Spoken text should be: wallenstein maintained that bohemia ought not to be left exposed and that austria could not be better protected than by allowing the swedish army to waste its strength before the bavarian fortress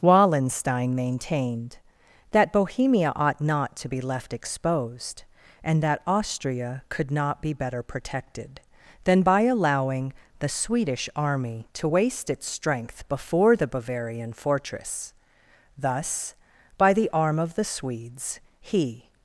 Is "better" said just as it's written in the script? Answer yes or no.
yes